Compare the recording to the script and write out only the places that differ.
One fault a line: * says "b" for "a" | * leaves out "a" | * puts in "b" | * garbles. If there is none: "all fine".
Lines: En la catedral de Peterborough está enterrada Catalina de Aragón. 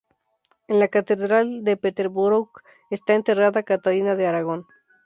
all fine